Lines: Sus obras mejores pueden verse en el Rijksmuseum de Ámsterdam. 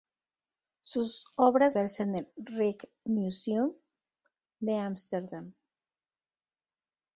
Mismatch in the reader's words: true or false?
true